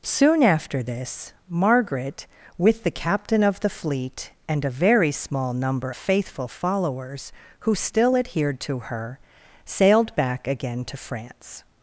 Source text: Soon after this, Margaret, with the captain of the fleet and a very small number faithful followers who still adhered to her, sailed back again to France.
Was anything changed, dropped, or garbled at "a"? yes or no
no